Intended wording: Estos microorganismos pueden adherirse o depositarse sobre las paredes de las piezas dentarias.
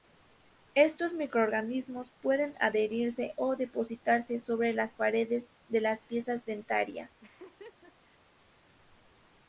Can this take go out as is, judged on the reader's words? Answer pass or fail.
pass